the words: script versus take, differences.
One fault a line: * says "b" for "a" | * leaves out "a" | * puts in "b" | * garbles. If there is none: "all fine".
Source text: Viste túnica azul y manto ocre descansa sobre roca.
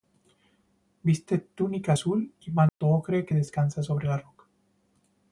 * puts in "que"
* puts in "la"